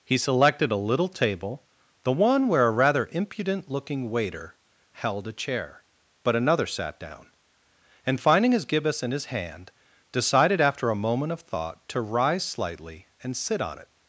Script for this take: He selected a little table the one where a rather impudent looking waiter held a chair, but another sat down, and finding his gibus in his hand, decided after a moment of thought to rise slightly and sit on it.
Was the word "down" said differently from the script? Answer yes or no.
no